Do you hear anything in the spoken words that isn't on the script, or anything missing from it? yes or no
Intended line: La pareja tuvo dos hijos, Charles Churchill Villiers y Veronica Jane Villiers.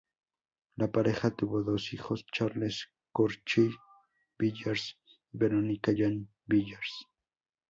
no